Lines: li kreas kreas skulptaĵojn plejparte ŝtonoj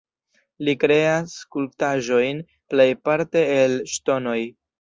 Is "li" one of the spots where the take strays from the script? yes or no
no